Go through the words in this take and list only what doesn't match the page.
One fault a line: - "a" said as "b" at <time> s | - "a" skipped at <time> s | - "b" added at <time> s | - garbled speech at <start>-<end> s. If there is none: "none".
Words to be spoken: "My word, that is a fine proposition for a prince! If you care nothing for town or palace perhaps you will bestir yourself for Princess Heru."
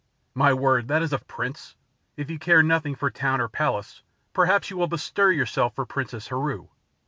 - "fine proposition for" skipped at 1.2 s